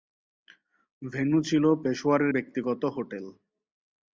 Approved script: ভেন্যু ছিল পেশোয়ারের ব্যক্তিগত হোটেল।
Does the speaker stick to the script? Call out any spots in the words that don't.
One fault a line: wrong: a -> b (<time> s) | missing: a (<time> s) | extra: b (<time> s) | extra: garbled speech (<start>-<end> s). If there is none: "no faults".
no faults